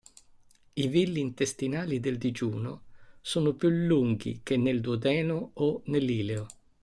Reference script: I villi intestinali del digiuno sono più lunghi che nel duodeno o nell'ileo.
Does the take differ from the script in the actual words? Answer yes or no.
no